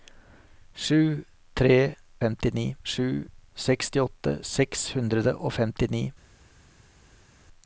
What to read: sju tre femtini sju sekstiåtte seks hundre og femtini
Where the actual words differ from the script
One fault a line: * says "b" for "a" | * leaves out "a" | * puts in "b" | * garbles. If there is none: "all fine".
all fine